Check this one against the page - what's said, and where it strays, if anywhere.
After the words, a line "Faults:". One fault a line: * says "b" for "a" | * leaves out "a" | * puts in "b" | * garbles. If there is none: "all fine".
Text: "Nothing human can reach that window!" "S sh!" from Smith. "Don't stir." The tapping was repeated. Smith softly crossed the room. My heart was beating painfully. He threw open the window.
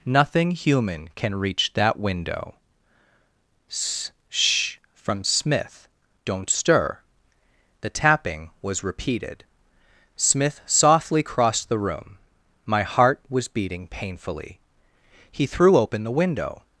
"Nothing human can reach that window!" "S sh!" from Smith. "Don't stir." The tapping was repeated. Smith softly crossed the room. My heart was beating painfully. He threw open the window.
Faults:
all fine